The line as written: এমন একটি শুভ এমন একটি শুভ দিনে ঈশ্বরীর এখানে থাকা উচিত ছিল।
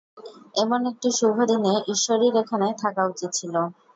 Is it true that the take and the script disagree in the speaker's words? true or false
true